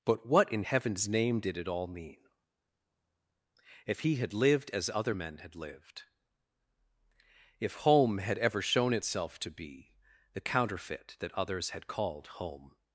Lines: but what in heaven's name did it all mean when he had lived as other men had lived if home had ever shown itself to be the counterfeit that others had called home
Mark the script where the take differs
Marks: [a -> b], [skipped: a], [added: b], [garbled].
but what in heaven's name did it all mean [when -> if] he had lived as other men had lived if home had ever shown itself to be the counterfeit that others had called home